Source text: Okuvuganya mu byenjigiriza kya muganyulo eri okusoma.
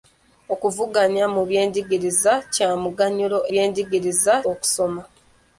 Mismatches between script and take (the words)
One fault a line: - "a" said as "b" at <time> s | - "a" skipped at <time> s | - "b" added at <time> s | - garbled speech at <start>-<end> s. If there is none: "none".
- "eri" said as "byenjigiriza" at 3.5 s